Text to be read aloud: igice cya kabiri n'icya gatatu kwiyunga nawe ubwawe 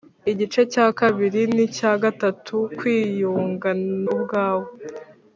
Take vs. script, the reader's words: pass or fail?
fail